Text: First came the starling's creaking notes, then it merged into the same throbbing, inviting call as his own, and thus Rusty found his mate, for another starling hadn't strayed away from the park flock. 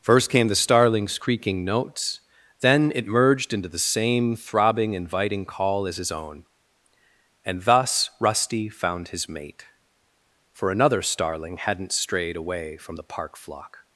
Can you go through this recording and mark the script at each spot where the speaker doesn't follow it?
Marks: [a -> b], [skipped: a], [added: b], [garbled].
First came the starling's creaking notes, then it merged into the same throbbing, inviting call as his own, and thus Rusty found his mate, for another starling hadn't strayed away from the park flock.